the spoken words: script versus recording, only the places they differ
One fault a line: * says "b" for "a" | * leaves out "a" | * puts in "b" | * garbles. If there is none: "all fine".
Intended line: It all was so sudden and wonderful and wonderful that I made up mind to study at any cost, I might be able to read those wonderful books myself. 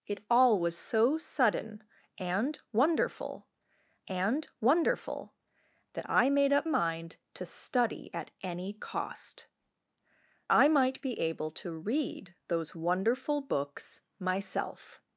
all fine